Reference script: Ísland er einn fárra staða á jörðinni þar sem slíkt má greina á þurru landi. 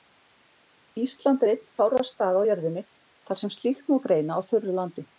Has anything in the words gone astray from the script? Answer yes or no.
no